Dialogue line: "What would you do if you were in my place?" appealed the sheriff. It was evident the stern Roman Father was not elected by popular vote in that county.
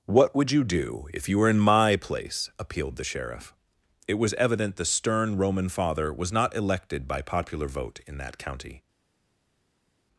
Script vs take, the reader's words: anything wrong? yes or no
no